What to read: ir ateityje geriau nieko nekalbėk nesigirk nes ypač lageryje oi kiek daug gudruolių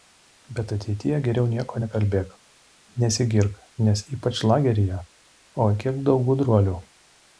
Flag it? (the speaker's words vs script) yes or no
yes